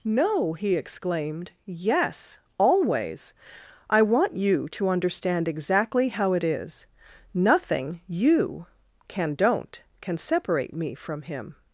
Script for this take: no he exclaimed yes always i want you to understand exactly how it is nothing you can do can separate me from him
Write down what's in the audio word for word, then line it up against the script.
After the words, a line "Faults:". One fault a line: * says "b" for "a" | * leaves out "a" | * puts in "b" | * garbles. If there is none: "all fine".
no he exclaimed yes always i want you to understand exactly how it is nothing you can don't can separate me from him
Faults:
* says "don't" for "do"